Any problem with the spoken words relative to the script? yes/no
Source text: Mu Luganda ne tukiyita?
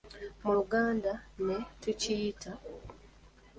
no